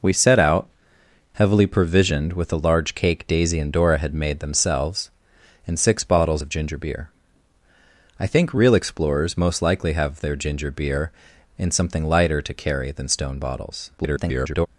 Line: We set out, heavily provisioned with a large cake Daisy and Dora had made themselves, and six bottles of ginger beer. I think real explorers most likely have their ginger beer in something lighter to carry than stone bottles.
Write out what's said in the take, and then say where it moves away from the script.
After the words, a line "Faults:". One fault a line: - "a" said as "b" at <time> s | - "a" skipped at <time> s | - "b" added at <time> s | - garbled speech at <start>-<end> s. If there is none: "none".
We set out, heavily provisioned with a large cake Daisy and Dora had made themselves, and six bottles of ginger beer. I think real explorers most likely have their ginger beer in something lighter to carry than stone bottles. [garbled]
Faults:
- garbled speech at 14.0-14.7 s